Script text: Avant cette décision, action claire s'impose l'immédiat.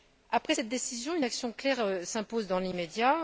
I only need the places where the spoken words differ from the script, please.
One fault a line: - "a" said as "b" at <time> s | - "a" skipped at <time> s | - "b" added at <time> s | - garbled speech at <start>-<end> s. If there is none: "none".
- "Avant" said as "Après" at 0.3 s
- "une" added at 1.1 s
- "dans" added at 2.5 s